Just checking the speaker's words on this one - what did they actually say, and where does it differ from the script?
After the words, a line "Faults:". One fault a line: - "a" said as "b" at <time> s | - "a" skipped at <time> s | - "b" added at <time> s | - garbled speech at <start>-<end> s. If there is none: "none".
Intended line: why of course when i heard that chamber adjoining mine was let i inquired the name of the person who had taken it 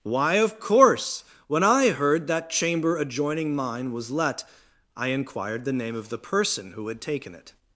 why of course when i heard that chamber adjoining mine was let i inquired the name of the person who had taken it
Faults:
none